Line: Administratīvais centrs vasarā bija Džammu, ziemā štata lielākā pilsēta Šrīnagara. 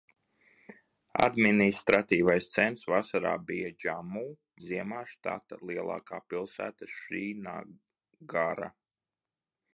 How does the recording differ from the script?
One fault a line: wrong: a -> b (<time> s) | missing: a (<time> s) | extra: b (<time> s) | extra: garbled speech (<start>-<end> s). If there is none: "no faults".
no faults